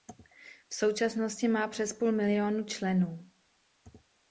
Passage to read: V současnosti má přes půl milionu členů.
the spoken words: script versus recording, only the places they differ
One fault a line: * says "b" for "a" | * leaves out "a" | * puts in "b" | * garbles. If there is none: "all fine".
all fine